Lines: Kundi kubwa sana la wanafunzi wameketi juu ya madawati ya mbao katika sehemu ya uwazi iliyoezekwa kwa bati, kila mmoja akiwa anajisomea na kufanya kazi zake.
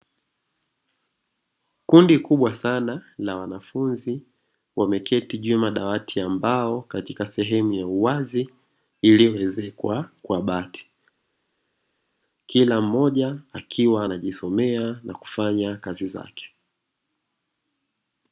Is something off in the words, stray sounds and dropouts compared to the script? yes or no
no